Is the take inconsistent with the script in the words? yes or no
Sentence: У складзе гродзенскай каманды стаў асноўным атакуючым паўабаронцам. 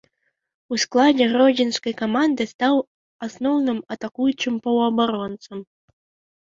no